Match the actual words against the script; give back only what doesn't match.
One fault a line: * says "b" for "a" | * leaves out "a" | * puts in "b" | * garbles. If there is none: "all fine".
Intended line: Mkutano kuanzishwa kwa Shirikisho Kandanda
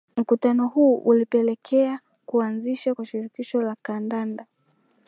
* puts in "huu ulipelekea"
* puts in "la"